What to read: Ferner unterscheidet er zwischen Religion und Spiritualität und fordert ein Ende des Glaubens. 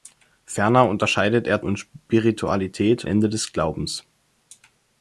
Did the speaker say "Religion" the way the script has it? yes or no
no